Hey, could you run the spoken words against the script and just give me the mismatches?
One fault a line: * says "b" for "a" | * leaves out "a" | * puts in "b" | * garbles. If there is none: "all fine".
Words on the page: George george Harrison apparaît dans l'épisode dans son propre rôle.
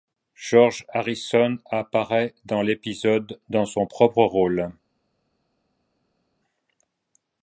* leaves out "george"